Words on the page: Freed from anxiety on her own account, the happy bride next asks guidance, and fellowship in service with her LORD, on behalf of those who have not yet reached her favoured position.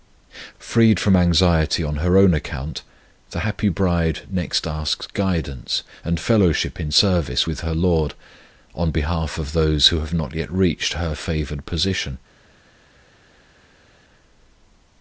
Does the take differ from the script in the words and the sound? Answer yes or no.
no